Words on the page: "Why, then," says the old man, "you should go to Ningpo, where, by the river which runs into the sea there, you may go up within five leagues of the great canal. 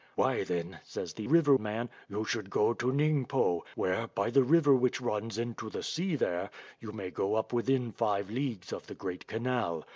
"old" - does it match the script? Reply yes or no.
no